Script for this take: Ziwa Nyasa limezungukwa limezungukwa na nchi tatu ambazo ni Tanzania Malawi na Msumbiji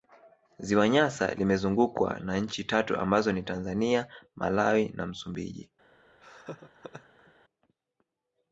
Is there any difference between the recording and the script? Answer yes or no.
yes